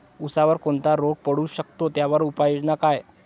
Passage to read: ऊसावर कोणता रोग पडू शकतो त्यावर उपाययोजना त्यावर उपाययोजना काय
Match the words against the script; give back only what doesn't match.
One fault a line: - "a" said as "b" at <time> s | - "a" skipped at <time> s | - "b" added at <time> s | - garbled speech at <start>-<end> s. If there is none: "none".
- "त्यावर उपाययोजना" skipped at 2.8 s